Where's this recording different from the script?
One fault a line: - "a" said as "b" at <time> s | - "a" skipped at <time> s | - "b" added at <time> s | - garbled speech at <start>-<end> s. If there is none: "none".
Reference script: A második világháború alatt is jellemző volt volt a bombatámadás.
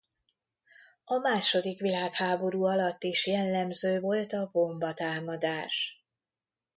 - "volt" skipped at 4.3 s